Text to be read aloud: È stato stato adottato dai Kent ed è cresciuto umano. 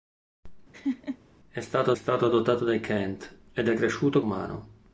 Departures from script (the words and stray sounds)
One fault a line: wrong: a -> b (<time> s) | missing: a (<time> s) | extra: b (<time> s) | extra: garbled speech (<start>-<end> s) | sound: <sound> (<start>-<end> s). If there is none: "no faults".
sound: laugh (0.7-1.2 s)